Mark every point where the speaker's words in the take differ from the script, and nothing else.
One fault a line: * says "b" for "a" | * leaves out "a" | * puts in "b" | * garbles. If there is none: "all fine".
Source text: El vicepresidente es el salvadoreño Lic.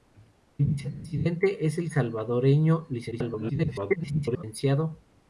* garbles